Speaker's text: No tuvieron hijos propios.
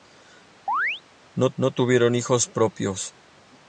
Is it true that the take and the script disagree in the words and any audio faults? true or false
true